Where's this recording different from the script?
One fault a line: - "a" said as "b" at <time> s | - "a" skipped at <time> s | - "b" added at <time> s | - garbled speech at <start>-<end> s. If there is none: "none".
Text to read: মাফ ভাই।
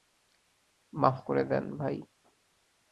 - "করে দেন" added at 1.2 s